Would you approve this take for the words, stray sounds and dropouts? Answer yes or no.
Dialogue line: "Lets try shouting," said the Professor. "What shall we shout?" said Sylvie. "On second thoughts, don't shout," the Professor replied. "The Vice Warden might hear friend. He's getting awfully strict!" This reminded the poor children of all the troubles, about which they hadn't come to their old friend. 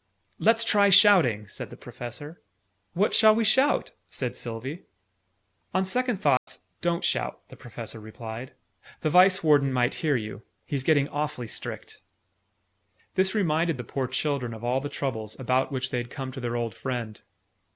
no